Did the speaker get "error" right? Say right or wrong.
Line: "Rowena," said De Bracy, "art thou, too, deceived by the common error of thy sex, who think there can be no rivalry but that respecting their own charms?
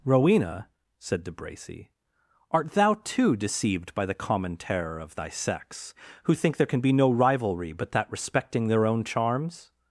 wrong